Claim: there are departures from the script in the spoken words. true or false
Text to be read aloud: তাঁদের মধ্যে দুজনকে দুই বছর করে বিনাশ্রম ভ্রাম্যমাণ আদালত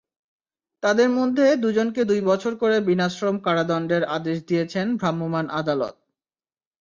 true